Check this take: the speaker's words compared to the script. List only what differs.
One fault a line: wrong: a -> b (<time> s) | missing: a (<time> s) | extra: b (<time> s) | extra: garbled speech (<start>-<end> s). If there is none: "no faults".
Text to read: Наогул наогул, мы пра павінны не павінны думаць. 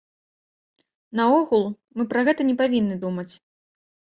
missing: наогул (1.6 s)
wrong: павінны -> гэта (2.3 s)